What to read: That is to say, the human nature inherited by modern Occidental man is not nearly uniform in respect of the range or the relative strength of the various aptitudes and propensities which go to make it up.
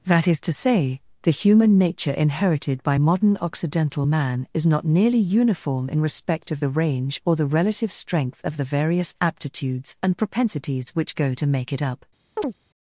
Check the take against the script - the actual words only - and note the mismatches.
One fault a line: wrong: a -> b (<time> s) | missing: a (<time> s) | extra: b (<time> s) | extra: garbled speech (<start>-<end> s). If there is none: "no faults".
no faults